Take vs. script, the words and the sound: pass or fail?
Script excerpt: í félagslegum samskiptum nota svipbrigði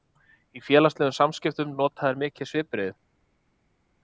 fail